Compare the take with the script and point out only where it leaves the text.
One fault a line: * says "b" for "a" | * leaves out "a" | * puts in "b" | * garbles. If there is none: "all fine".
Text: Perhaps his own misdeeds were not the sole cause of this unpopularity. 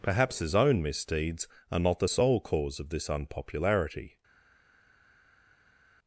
* says "are" for "were"